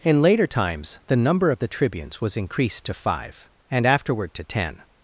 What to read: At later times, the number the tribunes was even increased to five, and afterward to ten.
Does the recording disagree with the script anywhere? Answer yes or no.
yes